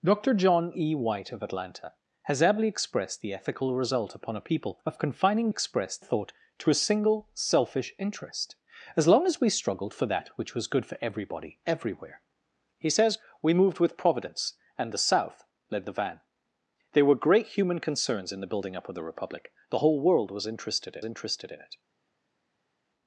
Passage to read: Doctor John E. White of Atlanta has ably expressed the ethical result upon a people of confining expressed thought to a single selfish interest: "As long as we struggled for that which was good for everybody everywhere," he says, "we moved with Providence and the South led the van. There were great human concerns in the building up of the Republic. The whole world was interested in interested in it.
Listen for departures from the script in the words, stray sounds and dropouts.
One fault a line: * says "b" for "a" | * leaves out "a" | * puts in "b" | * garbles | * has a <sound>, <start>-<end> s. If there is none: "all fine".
all fine